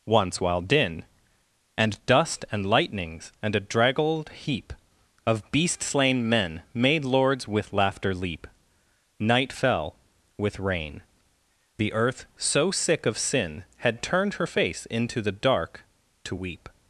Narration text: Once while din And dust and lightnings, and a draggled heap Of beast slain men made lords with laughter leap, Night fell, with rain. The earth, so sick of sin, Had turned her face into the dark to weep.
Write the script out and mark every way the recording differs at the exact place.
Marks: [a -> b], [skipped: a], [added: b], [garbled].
Once while din And dust and lightnings, and a draggled heap Of beast slain men made lords with laughter leap, Night fell, with rain. The earth, so sick of sin, Had turned her face into the dark to weep.